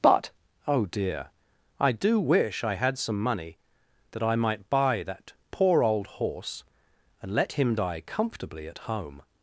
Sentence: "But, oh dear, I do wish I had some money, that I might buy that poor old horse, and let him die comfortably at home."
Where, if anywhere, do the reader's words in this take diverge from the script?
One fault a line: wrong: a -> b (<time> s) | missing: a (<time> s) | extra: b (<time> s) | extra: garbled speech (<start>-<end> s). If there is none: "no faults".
no faults